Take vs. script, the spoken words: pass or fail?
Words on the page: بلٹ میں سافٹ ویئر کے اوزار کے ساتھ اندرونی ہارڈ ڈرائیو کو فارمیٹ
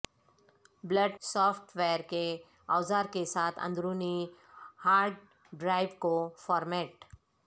fail